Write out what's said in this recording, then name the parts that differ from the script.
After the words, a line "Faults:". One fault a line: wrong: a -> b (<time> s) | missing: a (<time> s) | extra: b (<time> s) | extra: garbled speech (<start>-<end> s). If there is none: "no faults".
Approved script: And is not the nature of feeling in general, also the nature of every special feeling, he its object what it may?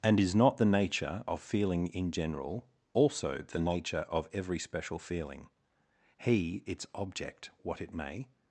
And is not the nature of feeling in general, also the nature of every special feeling, he its object what it may?
Faults:
no faults